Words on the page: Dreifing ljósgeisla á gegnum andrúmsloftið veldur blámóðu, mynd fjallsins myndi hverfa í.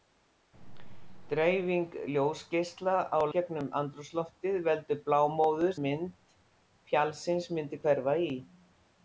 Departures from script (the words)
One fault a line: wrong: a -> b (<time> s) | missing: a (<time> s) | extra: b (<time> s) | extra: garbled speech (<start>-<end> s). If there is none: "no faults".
no faults